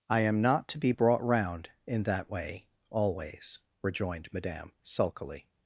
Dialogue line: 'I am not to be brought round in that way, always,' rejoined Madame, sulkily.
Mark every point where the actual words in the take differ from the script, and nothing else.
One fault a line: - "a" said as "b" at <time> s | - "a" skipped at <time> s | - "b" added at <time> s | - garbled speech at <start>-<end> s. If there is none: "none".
none